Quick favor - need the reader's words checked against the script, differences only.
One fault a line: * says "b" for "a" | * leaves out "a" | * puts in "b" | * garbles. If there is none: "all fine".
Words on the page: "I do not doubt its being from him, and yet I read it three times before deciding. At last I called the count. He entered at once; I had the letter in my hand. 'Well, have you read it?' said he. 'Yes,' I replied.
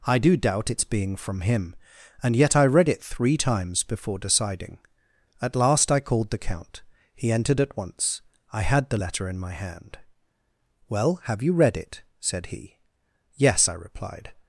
* leaves out "not"